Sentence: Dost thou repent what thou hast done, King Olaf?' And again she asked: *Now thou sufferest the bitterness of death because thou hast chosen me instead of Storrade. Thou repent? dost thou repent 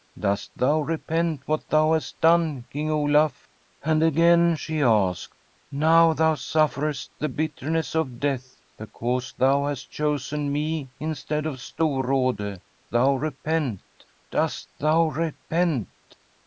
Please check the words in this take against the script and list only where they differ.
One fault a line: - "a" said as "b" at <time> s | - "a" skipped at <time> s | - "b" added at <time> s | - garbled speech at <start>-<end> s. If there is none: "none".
none